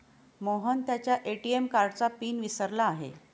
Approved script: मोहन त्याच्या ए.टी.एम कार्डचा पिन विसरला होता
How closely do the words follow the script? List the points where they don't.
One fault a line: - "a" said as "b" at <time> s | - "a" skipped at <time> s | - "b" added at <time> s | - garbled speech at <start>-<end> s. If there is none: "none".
- "होता" said as "आहे" at 2.9 s